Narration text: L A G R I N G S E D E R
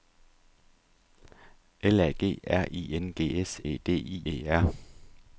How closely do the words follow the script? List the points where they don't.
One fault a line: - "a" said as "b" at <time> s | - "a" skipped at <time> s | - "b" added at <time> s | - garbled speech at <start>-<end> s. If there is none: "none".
none